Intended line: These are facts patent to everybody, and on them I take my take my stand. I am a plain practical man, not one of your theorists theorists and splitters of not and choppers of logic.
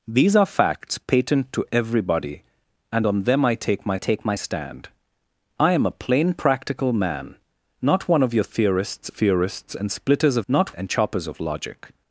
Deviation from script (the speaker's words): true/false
false